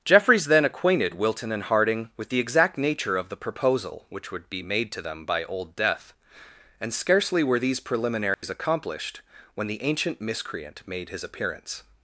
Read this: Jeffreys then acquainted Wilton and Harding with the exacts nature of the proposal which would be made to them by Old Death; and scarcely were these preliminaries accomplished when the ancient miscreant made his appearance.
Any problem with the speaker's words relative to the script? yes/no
yes